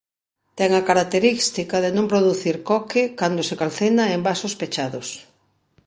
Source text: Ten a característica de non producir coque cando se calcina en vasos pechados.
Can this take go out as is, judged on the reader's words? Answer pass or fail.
pass